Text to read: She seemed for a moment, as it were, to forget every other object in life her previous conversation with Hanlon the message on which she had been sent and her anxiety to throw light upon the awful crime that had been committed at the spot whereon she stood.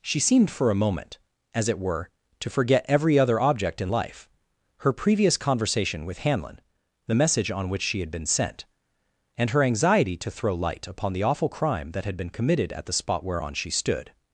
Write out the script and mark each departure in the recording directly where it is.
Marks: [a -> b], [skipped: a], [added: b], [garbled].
She seemed for a moment, as it were, to forget every other object in life her previous conversation with Hanlon the message on which she had been sent and her anxiety to throw light upon the awful crime that had been committed at the spot whereon she stood.